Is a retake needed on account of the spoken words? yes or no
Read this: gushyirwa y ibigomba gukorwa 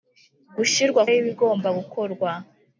no